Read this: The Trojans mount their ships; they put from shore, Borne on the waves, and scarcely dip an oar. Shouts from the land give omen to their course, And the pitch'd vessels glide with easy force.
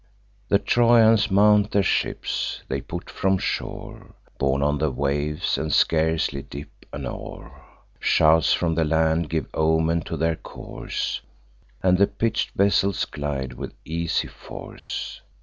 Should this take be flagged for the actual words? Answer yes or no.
no